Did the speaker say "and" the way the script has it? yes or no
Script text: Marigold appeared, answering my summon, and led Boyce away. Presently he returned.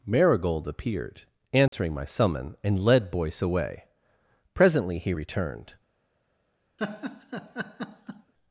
yes